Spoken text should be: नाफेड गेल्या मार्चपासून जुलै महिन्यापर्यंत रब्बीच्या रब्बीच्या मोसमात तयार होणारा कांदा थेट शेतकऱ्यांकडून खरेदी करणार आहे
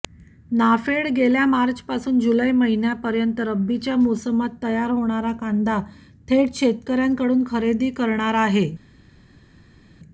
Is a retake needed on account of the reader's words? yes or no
yes